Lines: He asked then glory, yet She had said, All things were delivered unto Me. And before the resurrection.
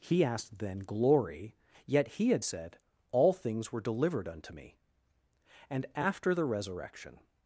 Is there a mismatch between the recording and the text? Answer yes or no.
yes